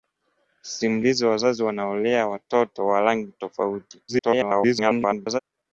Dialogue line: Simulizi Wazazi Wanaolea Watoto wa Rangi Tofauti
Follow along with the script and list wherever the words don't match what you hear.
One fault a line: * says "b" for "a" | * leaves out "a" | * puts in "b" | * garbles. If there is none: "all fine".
* garbles